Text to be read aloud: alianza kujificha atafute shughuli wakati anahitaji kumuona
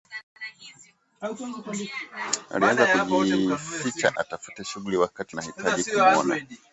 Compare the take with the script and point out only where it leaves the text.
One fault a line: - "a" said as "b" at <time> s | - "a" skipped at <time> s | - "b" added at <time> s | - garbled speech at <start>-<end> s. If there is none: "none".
none